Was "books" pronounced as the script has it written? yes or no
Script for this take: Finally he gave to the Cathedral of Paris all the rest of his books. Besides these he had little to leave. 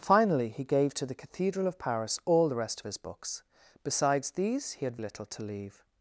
yes